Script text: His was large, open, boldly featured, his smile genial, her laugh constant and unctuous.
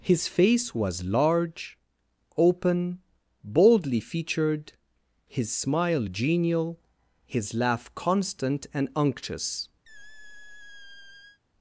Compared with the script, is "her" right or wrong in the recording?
wrong